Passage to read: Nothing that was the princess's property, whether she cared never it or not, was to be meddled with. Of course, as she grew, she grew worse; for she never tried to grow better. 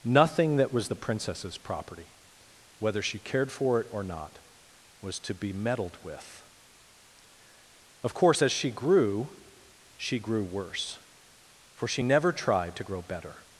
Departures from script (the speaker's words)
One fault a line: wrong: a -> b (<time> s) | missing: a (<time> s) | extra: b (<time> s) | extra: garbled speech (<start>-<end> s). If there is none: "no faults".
wrong: never -> for (3.5 s)